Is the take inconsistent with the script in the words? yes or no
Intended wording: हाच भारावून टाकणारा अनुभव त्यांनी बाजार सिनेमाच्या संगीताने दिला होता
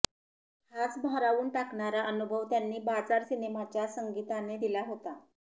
no